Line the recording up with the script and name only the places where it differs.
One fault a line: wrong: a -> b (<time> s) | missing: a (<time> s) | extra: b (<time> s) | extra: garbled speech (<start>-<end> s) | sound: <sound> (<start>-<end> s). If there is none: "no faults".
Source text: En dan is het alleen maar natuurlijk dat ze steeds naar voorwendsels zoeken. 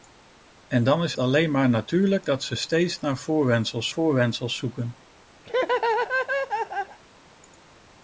missing: het (1.1 s)
extra: voorwendsels (3.9 s)
sound: laugh (5.4-7.0 s)